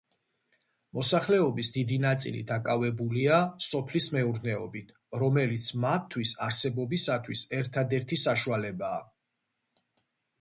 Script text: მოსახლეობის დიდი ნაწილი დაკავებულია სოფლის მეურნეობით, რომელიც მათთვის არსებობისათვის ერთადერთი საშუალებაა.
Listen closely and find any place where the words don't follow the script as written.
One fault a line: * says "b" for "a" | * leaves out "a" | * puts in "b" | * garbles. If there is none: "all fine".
all fine